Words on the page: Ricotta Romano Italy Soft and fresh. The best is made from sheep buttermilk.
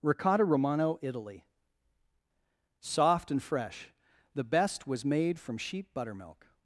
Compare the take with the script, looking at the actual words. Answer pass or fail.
fail